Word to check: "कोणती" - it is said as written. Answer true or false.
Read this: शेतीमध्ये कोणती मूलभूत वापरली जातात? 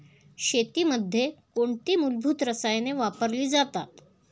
true